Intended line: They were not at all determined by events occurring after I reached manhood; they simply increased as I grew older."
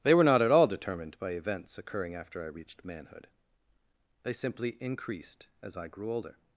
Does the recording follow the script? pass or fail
pass